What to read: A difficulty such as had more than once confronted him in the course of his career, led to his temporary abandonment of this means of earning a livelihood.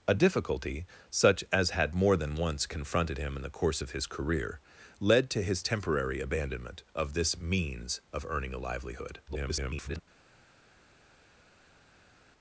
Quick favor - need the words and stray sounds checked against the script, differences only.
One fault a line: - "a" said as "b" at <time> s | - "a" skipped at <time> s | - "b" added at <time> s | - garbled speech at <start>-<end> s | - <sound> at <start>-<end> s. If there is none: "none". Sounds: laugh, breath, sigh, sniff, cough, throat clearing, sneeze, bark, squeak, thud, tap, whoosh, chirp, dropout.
- garbled speech at 9.3-10.0 s